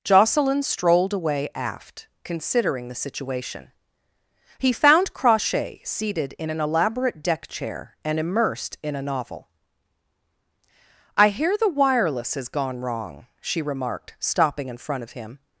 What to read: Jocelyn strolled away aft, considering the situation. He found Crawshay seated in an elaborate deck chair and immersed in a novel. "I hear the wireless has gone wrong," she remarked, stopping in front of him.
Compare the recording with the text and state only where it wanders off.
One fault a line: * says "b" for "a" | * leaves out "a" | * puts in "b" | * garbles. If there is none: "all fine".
all fine